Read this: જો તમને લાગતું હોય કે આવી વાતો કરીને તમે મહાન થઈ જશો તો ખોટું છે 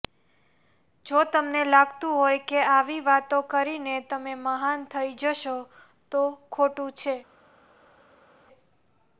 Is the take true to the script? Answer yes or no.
yes